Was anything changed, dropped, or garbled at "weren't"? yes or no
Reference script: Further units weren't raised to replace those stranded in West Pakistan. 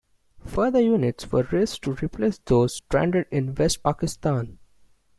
yes